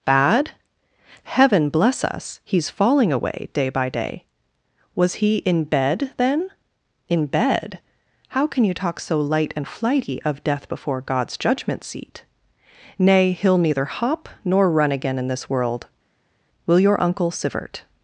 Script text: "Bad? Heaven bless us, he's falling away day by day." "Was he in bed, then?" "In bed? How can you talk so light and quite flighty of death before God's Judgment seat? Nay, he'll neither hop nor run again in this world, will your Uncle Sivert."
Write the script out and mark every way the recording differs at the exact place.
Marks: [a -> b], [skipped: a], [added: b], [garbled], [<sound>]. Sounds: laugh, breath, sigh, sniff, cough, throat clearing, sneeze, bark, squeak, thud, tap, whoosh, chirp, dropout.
"Bad? Heaven bless us, he's falling away day by day." "Was he in bed, then?" "In bed? How can you talk so light and [skipped: quite] flighty of death before God's Judgment seat? Nay, he'll neither hop nor run again in this world, will your Uncle Sivert."